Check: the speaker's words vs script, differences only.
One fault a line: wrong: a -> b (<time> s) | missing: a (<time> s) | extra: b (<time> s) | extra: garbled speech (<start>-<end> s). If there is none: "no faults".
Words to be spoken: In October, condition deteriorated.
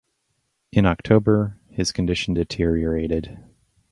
extra: his (1.7 s)